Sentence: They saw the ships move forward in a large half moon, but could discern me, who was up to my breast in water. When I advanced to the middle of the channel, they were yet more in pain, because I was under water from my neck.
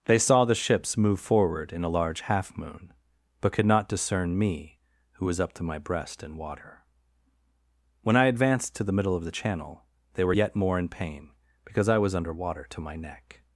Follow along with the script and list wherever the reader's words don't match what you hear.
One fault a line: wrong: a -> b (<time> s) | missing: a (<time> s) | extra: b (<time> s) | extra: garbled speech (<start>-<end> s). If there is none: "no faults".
extra: not (3.6 s)
wrong: from -> to (12.7 s)